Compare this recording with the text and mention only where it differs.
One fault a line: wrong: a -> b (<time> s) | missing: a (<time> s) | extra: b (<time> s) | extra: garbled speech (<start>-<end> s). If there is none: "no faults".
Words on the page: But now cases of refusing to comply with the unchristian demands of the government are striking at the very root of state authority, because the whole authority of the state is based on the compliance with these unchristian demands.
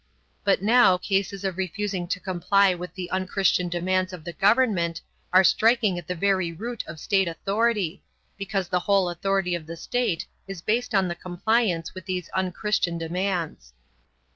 no faults